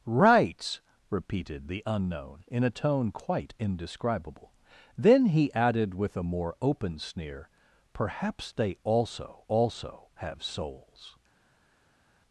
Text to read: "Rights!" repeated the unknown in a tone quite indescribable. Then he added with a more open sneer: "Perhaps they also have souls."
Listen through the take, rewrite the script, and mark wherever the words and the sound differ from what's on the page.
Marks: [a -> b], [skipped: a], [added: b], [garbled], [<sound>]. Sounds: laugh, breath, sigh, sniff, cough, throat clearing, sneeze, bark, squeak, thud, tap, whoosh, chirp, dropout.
"Rights!" repeated the unknown in a tone quite indescribable. Then he added with a more open sneer: "Perhaps they also [added: also] have souls."